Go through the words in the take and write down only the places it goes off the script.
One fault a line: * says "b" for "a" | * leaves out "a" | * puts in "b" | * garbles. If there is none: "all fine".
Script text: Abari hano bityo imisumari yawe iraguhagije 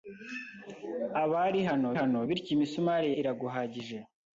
* puts in "hano"
* leaves out "yawe"